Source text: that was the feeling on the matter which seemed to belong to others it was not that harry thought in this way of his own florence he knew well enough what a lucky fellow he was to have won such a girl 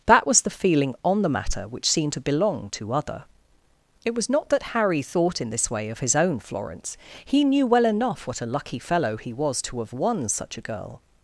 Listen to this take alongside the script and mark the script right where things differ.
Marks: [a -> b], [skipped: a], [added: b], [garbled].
that was the feeling on the matter which seemed to belong to [others -> other] it was not that harry thought in this way of his own florence he knew well enough what a lucky fellow he was to have won such a girl